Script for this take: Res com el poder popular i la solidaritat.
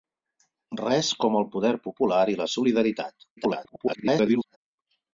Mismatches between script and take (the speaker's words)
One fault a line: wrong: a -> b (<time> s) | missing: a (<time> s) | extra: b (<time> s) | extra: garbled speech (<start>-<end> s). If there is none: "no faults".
extra: garbled speech (3.4-4.6 s)